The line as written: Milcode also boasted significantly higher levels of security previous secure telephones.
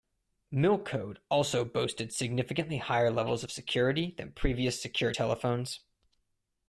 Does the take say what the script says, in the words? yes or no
no